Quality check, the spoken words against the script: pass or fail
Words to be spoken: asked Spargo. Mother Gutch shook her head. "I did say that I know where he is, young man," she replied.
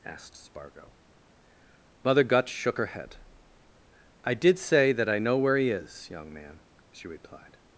pass